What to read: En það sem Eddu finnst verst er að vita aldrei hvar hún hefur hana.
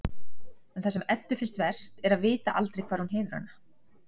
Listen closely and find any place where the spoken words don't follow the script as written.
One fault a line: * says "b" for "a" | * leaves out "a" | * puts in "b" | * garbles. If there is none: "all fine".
all fine